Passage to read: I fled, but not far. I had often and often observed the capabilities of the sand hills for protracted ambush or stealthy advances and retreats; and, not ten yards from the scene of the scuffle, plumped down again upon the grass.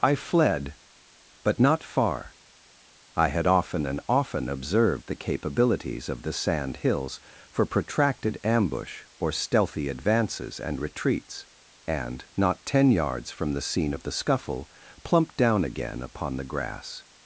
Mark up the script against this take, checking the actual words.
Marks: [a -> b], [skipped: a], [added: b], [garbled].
I fled, but not far. I had often and often observed the capabilities of the sand hills for protracted ambush or stealthy advances and retreats; and, not ten yards from the scene of the scuffle, plumped down again upon the grass.